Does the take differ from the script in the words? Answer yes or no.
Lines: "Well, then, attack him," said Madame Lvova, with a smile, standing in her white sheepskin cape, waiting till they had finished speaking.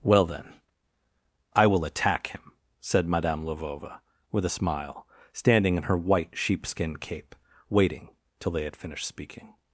yes